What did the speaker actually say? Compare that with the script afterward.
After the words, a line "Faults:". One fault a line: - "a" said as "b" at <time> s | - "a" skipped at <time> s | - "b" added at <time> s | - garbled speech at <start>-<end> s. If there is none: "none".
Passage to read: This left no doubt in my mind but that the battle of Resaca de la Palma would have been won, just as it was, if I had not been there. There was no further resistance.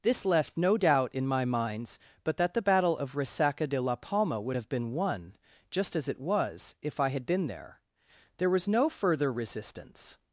This left no doubt in my minds but that the battle of Resaca de la Palma would have been won, just as it was, if I had been there. There was no further resistance.
Faults:
- "mind" said as "minds" at 1.4 s
- "not" skipped at 7.3 s